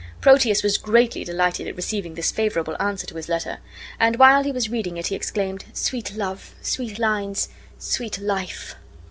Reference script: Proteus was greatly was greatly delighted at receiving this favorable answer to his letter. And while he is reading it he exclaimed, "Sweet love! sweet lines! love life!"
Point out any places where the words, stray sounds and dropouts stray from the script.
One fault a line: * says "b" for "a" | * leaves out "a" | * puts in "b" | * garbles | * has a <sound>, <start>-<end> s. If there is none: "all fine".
* leaves out "was greatly"
* says "was" for "is"
* says "sweet" for "love"